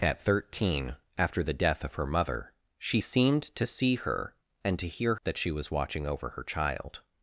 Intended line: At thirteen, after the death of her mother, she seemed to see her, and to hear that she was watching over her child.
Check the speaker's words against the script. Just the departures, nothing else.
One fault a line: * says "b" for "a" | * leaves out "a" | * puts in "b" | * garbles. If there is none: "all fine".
all fine